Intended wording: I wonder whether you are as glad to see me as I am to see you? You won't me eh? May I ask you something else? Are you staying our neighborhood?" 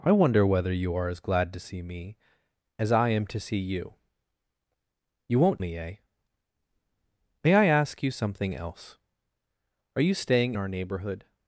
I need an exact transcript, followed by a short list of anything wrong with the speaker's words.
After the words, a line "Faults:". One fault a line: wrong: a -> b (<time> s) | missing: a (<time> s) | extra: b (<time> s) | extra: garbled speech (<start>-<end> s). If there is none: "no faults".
I wonder whether you are as glad to see me as I am to see you? You won't me eh? May I ask you something else? Are you staying our neighborhood?"
Faults:
no faults